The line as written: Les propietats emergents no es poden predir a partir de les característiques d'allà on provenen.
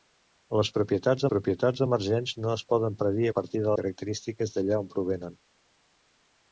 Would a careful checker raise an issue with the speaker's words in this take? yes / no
yes